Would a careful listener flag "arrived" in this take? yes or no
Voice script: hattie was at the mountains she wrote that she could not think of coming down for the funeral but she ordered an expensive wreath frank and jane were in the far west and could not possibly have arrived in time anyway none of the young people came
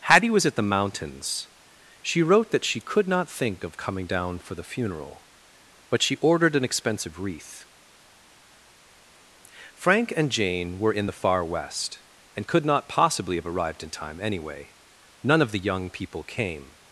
no